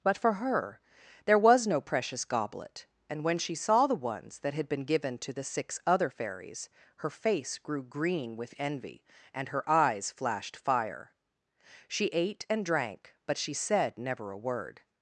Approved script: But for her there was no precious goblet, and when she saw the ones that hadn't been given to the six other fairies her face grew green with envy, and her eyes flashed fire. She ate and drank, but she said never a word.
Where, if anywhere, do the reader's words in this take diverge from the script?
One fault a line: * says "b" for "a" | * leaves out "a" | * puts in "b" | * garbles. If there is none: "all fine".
* says "had" for "hadn't"